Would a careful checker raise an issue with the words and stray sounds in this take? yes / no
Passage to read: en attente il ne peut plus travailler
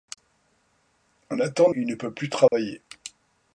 yes